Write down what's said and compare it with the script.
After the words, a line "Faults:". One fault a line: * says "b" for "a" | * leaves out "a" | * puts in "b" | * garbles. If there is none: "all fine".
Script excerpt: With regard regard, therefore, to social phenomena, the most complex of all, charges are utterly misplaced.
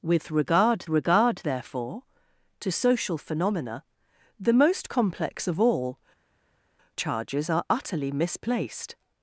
With regard regard, therefore, to social phenomena, the most complex of all, charges are utterly misplaced.
Faults:
all fine